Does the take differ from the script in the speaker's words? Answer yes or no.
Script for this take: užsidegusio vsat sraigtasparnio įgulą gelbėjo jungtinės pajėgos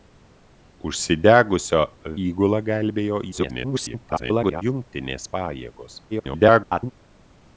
yes